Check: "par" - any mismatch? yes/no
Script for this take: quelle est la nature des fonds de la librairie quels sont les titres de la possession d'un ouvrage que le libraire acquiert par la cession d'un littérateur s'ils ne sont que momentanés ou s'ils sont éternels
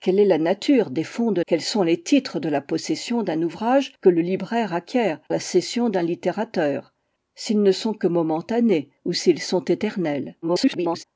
yes